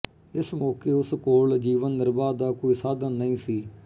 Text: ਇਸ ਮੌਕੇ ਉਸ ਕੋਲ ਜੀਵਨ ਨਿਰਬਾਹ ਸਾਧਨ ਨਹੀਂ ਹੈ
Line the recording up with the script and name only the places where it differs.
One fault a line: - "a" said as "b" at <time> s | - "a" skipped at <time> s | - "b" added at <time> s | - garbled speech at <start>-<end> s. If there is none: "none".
- "ਦਾ ਕੋਈ" added at 2.4 s
- "ਹੈ" said as "ਸੀ" at 3.4 s